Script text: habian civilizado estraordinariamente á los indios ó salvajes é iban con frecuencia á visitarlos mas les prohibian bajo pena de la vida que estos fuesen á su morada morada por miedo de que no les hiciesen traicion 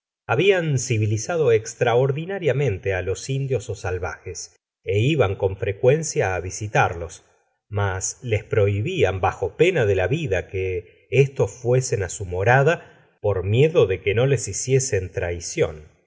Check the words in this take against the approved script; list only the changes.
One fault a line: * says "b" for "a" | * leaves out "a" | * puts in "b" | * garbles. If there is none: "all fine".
* leaves out "morada"